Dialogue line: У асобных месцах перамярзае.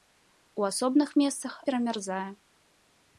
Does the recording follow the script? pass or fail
pass